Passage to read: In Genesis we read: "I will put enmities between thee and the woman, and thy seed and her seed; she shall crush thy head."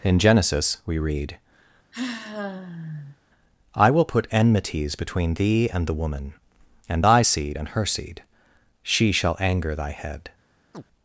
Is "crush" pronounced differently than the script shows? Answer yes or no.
yes